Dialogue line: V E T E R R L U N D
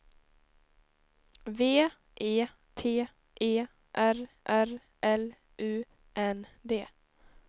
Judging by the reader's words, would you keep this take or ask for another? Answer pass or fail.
pass